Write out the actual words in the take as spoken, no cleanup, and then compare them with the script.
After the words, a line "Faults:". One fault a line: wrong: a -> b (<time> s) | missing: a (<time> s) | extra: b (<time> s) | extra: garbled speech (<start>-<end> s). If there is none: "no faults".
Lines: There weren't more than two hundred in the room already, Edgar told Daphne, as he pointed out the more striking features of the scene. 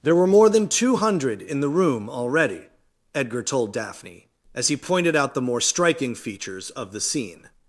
There were more than two hundred in the room already, Edgar told Daphne, as he pointed out the more striking features of the scene.
Faults:
wrong: weren't -> were (0.1 s)